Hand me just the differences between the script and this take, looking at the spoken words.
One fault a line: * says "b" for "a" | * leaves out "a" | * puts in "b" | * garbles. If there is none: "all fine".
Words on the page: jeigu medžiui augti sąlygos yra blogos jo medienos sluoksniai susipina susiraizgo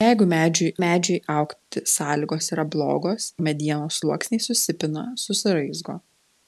* puts in "medžiui"
* leaves out "jo"